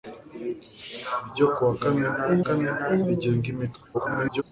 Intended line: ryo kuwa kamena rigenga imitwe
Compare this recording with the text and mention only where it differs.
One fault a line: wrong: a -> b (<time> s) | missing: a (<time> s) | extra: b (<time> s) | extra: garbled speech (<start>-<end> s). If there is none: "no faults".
extra: kamena (2.4 s)
extra: garbled speech (3.9-4.4 s)